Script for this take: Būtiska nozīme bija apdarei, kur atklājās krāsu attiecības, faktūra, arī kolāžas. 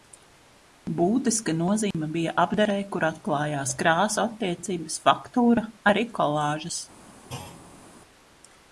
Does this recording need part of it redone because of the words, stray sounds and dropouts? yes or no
yes